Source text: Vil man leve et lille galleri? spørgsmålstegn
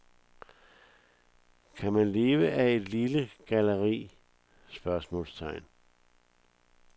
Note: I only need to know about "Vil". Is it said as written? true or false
false